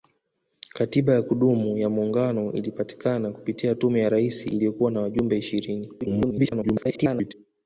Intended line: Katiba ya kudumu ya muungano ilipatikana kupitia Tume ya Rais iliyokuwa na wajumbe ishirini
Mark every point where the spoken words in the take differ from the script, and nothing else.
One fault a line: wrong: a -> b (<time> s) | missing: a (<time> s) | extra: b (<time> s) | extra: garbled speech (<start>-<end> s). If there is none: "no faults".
extra: garbled speech (6.0-7.3 s)